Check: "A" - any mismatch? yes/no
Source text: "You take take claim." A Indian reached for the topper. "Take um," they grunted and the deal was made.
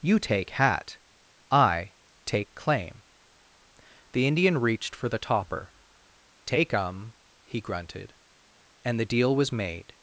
yes